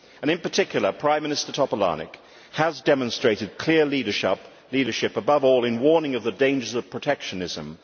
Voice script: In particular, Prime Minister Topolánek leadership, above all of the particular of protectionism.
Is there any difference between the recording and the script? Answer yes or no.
yes